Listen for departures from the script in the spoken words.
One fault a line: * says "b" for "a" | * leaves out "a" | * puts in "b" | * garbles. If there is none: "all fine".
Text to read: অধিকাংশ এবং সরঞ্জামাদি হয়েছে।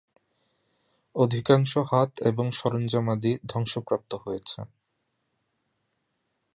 * puts in "হাত"
* puts in "ধ্বংসপ্রাপ্ত"